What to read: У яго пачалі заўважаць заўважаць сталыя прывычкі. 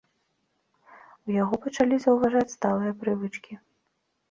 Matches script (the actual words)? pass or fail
fail